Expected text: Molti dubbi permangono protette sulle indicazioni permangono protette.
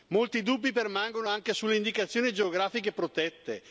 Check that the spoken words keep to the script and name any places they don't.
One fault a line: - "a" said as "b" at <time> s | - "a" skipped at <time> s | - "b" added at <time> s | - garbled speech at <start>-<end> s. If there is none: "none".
- "protette" said as "anche" at 1.3 s
- "permangono" said as "geografiche" at 2.3 s